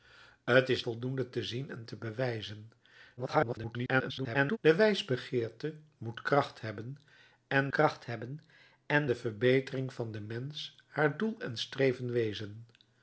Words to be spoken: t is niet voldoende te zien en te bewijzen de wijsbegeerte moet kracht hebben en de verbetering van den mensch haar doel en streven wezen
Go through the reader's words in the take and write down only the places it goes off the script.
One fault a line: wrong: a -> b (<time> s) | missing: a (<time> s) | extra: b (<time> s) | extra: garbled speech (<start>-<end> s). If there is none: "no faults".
missing: niet (0.8 s)
extra: garbled speech (3.2-4.6 s)
extra: kracht hebben en (7.7 s)